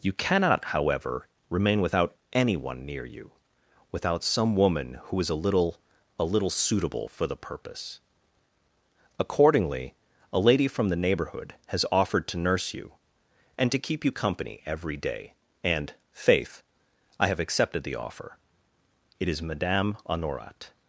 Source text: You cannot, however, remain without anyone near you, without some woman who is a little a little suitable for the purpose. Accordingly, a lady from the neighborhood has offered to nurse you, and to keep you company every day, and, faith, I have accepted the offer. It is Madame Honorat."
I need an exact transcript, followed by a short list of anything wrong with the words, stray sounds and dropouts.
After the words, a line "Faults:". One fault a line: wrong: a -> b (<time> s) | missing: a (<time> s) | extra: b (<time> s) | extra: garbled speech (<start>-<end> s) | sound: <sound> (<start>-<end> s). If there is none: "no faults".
You cannot, however, remain without anyone near you, without some woman who is a little a little suitable for the purpose. Accordingly, a lady from the neighborhood has offered to nurse you, and to keep you company every day, and, faith, I have accepted the offer. It is Madame Honorat."
Faults:
no faults